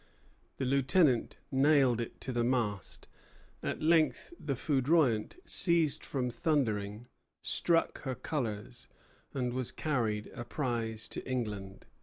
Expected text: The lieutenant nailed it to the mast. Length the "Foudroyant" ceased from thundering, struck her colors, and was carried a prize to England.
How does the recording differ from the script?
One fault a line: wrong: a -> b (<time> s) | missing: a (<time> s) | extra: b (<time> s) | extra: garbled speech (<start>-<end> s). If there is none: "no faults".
extra: At (3.6 s)